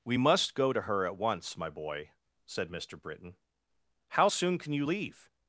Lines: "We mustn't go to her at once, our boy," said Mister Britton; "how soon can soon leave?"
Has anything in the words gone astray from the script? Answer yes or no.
yes